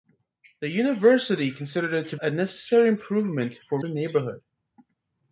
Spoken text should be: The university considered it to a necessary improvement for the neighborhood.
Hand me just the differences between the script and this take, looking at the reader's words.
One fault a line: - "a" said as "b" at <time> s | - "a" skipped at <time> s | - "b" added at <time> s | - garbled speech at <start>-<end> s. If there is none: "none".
none